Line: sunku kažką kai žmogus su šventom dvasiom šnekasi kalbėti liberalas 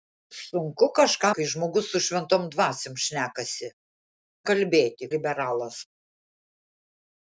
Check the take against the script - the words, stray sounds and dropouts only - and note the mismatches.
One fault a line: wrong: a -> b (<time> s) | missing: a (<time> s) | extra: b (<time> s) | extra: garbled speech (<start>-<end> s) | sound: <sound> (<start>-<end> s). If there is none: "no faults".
no faults